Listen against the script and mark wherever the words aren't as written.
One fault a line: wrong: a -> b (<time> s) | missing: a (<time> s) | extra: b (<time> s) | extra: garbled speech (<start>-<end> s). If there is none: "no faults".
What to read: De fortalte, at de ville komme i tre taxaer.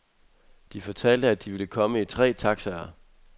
no faults